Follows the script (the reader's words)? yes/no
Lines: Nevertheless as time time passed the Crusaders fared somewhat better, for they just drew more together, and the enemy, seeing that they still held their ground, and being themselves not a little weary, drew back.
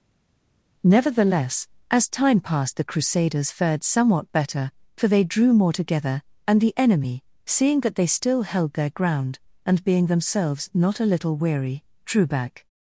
no